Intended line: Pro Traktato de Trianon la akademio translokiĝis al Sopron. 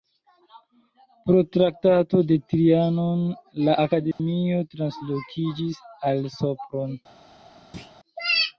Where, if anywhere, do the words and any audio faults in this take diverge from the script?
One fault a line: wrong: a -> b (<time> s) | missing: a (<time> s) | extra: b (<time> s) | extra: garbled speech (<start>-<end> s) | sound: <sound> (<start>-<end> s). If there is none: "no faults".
sound: dropout (4.1-4.2 s)
sound: thud (7.7-8.0 s)